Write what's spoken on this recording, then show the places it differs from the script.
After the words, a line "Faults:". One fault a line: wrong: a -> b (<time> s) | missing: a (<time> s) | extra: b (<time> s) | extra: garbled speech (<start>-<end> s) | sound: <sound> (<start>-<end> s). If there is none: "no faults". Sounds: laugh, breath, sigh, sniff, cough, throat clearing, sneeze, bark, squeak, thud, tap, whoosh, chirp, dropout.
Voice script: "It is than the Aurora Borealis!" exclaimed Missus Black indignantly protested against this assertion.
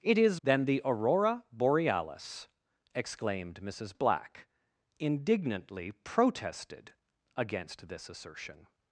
"It is than the Aurora Borealis!" exclaimed Missus Black indignantly protested against this assertion.
Faults:
no faults